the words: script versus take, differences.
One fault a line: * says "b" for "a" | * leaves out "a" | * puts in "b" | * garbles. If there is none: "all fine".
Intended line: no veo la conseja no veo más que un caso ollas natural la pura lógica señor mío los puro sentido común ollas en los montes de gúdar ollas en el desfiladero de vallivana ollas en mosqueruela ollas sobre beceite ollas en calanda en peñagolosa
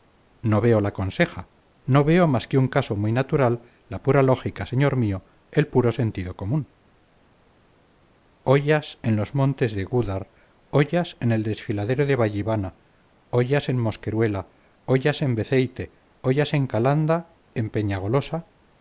* says "muy" for "ollas"
* says "el" for "los"
* says "en" for "sobre"